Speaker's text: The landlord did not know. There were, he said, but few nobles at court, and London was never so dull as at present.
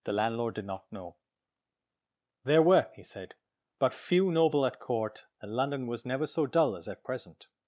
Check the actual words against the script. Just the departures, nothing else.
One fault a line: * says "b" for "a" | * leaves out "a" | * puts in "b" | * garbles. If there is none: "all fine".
* says "noble" for "nobles"